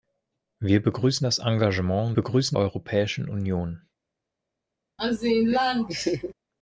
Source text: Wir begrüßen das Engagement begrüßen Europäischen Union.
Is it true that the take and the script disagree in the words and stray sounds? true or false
true